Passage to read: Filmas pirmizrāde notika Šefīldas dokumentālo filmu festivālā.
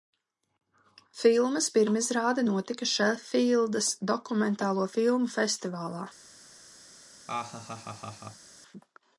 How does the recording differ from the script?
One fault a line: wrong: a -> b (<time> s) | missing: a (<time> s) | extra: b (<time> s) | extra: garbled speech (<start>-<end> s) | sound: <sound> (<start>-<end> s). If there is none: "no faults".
sound: laugh (7.3-8.5 s)